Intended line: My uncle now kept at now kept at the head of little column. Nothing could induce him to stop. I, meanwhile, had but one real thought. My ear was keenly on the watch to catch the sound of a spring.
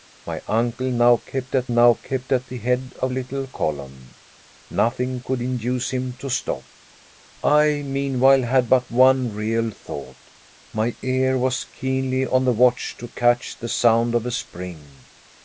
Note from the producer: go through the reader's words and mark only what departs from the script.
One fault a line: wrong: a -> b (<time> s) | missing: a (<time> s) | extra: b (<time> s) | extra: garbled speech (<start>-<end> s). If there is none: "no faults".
no faults